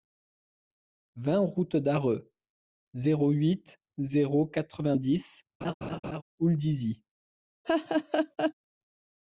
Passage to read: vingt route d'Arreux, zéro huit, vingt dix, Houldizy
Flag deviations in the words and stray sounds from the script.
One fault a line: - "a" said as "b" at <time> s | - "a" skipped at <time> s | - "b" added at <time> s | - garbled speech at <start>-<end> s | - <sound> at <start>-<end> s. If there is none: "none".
- "zéro quatre" added at 4.0 s
- laugh at 5.6-6.2 s
- laugh at 7.6-8.5 s